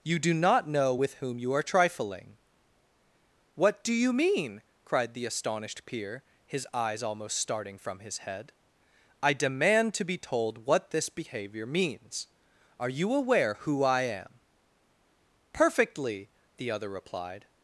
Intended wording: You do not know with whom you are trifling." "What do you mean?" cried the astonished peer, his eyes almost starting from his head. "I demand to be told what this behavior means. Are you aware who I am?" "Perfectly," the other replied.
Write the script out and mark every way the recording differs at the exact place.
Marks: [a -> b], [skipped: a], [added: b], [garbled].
You do not know with whom you are trifling." "What do you mean?" cried the astonished peer, his eyes almost starting from his head. "I demand to be told what this behavior means. Are you aware who I am?" "Perfectly," the other replied.